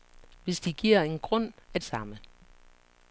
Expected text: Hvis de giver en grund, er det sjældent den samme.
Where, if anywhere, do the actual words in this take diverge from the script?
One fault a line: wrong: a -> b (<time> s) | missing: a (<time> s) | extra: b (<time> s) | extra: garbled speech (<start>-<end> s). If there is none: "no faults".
missing: det sjældent den (1.8 s)